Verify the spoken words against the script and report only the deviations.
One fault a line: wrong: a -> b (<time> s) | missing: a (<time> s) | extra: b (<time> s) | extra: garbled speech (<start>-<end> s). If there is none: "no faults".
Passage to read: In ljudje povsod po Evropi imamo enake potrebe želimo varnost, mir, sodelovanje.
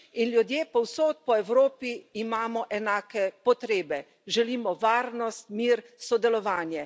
no faults